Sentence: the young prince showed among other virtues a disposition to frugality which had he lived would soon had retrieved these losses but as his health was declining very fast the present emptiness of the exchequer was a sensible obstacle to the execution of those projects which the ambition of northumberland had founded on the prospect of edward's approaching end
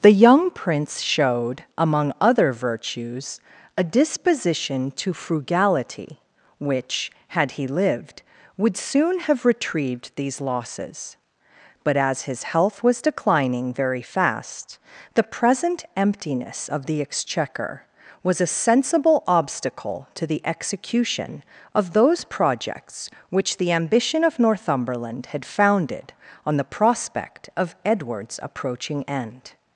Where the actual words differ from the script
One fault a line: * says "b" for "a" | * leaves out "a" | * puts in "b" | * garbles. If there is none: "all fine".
* says "have" for "had"